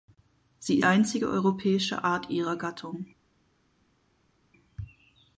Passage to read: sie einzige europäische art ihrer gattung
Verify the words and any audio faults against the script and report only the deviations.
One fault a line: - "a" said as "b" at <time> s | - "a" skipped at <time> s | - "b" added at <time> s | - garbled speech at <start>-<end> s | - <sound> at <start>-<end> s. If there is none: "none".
none